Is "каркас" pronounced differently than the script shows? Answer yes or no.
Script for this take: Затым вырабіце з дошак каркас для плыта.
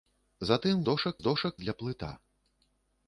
yes